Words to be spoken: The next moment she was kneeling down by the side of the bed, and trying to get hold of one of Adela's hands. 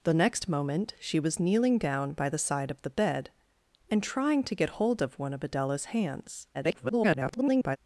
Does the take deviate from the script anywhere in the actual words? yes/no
yes